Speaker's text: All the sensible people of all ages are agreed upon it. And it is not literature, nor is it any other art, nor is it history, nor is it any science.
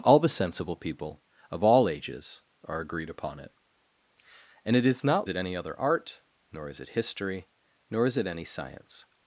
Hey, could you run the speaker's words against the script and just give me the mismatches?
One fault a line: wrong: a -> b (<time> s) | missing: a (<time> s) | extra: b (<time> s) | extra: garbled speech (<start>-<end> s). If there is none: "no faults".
missing: literature nor is (5.3 s)